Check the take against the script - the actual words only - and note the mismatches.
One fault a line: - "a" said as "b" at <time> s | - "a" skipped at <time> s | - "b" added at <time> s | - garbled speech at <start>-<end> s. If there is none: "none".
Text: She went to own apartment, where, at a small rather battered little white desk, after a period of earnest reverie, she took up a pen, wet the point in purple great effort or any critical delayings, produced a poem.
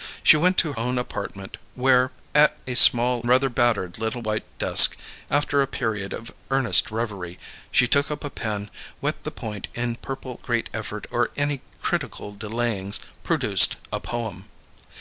none